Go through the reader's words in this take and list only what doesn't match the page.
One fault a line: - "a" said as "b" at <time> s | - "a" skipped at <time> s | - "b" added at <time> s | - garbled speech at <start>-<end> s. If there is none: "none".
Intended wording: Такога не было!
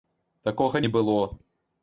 none